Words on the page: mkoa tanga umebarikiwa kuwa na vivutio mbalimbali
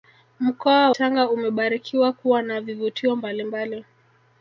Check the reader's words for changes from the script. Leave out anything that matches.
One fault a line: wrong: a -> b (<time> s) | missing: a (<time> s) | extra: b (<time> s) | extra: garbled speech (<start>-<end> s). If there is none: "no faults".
no faults